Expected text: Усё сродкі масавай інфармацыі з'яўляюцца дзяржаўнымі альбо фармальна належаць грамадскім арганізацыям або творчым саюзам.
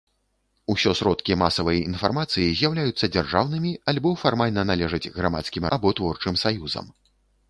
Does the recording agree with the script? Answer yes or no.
no